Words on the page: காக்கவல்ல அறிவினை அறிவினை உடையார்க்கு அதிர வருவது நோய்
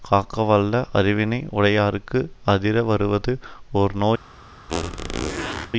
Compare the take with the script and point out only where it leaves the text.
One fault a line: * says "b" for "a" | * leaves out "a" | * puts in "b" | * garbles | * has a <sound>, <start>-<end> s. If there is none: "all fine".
* leaves out "அறிவினை"
* puts in "ஓர்"
* has a squeak, 4.7-5.7 s